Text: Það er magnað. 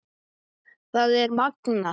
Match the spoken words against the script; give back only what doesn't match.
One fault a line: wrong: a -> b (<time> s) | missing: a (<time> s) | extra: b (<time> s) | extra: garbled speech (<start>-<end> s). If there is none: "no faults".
no faults